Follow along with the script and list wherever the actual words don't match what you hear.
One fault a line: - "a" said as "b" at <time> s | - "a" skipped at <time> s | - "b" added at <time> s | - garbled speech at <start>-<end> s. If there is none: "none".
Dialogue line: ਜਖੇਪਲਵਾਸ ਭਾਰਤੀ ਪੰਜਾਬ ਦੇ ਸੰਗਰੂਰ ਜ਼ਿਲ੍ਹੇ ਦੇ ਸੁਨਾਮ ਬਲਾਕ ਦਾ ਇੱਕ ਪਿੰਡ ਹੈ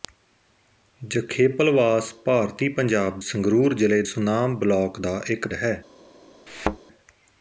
- "ਦੇ" skipped at 3.2 s
- "ਦੇ" skipped at 4.0 s
- "ਪਿੰਡ" skipped at 5.5 s